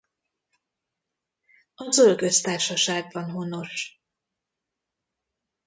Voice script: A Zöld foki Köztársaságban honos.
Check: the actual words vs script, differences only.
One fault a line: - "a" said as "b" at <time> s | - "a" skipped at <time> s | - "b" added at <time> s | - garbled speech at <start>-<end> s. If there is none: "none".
- "foki" skipped at 2.2 s